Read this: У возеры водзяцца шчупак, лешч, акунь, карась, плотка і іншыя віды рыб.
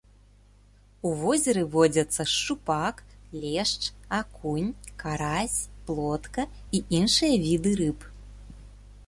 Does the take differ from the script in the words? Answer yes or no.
no